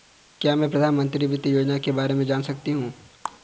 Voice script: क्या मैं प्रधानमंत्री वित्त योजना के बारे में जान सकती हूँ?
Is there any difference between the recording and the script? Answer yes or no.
no